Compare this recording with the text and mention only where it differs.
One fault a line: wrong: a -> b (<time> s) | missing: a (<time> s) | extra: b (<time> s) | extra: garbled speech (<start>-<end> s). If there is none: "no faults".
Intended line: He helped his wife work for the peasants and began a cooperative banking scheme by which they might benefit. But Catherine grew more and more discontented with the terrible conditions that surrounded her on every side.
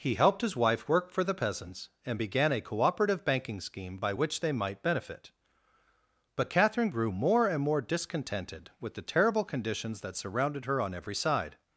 no faults